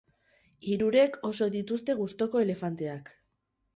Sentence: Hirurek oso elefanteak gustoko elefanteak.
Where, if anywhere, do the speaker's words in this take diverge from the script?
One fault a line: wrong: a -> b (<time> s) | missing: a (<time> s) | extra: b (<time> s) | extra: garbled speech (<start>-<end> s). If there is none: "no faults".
wrong: elefanteak -> dituzte (1.6 s)